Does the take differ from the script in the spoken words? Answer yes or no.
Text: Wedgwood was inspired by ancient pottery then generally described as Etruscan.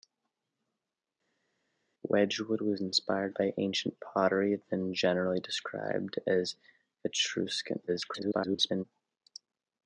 yes